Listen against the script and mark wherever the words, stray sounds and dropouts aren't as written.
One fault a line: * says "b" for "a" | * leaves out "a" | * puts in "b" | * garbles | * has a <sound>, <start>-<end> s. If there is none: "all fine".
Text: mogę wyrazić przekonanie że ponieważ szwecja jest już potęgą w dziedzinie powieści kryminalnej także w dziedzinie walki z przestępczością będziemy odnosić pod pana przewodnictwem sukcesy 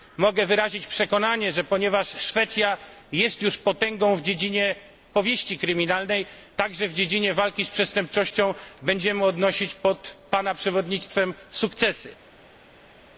all fine